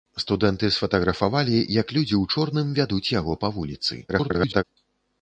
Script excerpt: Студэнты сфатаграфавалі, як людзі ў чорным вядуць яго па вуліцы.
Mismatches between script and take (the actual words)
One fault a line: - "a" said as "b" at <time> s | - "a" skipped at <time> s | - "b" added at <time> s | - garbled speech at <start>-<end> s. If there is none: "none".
- garbled speech at 4.1-4.6 s